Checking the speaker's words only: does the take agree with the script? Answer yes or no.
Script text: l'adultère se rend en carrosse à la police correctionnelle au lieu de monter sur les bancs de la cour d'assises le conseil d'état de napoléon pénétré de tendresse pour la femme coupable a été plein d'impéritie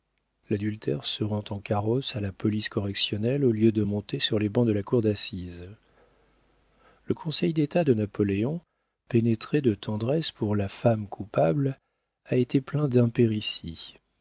yes